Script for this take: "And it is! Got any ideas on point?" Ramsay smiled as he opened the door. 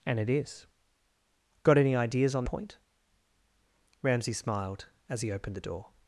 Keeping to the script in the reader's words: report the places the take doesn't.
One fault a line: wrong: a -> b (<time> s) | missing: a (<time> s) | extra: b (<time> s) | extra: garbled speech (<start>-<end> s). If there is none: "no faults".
no faults